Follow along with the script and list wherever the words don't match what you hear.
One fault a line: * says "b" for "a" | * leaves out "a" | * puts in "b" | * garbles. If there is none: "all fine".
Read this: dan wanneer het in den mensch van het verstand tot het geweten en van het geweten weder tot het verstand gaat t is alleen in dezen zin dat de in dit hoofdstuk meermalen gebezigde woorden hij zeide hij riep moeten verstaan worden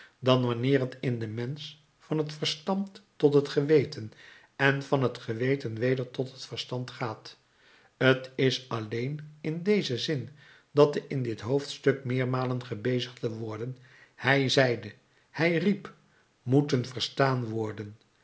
all fine